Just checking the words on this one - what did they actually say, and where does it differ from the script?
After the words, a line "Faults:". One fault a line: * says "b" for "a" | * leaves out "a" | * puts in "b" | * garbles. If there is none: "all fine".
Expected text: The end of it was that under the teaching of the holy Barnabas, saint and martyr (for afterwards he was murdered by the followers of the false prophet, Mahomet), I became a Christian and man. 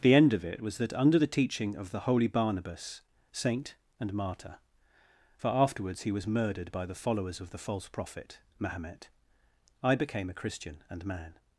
The end of it was that under the teaching of the holy Barnabas, saint and martyr (for afterwards he was murdered by the followers of the false prophet, Mahomet), I became a Christian and man.
Faults:
all fine